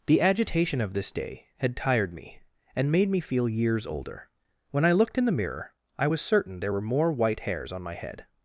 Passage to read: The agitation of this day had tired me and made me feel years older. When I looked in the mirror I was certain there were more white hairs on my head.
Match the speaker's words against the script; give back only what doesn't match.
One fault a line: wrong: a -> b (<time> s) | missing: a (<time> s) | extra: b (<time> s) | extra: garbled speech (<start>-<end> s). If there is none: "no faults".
no faults